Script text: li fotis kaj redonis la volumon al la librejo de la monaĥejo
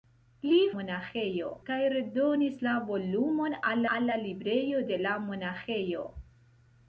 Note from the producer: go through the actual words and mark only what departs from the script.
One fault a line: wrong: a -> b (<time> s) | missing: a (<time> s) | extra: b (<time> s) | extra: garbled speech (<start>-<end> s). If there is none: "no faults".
wrong: fotis -> monaĥejo (0.8 s)
extra: al (4.0 s)